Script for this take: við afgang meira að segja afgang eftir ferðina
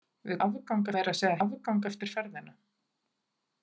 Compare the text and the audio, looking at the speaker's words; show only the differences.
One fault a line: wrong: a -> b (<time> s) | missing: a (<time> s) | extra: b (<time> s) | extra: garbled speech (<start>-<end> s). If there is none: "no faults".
no faults